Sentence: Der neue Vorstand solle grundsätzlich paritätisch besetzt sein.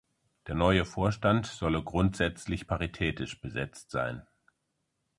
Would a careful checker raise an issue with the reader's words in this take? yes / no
no